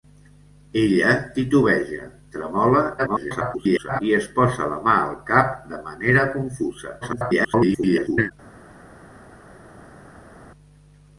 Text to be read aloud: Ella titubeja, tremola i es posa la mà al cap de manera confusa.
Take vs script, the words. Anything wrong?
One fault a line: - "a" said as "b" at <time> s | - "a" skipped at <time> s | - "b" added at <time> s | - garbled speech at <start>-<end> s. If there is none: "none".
- garbled speech at 3.0-4.0 s
- garbled speech at 7.0-8.3 s